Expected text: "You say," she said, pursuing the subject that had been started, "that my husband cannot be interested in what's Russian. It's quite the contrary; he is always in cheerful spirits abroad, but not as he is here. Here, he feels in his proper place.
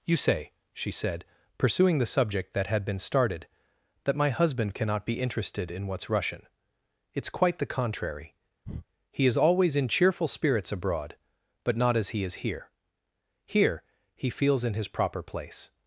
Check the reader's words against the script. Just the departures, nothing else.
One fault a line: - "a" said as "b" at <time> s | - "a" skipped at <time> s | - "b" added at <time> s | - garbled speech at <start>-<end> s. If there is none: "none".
none